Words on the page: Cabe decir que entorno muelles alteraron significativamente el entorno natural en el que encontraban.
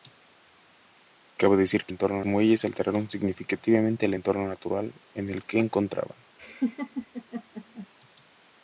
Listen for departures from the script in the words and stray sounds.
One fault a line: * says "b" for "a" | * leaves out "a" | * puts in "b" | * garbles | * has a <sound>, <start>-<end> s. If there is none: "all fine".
* has a laugh, 6.4-7.9 s